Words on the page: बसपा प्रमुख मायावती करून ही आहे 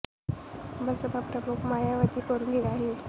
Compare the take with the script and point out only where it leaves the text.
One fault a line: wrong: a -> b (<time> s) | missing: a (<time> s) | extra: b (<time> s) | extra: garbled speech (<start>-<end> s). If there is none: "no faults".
no faults